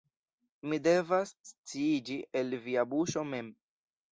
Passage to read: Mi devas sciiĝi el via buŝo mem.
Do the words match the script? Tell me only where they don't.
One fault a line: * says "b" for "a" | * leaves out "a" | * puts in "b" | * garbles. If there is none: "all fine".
all fine